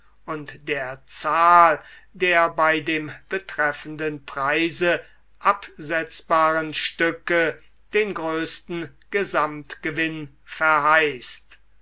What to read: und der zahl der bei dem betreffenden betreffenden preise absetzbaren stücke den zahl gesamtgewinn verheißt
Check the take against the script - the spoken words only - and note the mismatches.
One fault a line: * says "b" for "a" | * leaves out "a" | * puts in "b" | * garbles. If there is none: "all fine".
* leaves out "betreffenden"
* says "größten" for "zahl"